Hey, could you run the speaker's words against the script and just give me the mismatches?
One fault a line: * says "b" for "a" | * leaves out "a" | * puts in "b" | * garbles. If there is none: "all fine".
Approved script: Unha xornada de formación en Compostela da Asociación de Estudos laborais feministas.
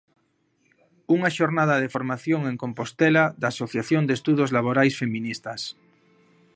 all fine